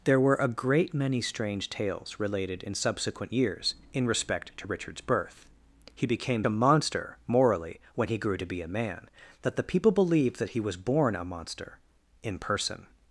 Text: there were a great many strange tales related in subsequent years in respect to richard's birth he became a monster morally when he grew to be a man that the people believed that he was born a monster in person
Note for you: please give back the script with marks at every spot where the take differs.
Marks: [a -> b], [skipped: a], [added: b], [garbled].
there were a great many strange tales related in subsequent years in respect to richard's birth he became a monster morally when he grew to be a man that the people believed that he was born a monster in person